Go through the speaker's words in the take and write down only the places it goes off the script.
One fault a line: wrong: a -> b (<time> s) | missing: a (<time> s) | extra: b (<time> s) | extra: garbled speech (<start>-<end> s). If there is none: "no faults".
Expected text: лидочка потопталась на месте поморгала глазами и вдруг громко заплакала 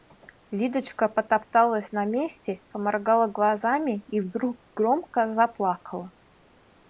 no faults